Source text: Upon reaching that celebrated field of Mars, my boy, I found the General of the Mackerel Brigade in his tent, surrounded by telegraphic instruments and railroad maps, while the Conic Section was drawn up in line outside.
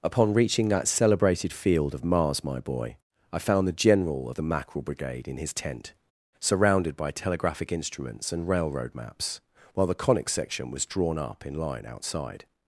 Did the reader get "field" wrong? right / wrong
right